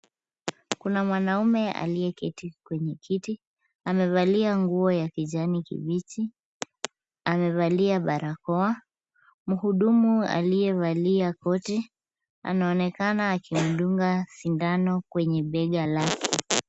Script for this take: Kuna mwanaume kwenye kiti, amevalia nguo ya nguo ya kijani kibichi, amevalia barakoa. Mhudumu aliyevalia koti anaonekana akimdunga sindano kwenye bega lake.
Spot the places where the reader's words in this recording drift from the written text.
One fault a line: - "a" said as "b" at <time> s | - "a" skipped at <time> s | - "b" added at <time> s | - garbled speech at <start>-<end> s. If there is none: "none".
- "aliyeketi" added at 1.7 s
- "nguo ya" skipped at 5.1 s